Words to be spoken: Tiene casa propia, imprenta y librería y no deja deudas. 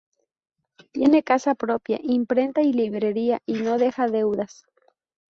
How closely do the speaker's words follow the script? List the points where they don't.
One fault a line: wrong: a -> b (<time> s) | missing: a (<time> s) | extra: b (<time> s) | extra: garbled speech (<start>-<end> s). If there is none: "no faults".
no faults